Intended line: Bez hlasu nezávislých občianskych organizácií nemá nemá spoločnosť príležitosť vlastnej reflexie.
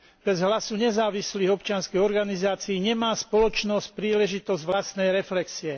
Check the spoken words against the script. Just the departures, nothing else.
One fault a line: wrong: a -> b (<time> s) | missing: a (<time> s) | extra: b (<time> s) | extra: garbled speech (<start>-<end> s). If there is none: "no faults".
missing: nemá (3.1 s)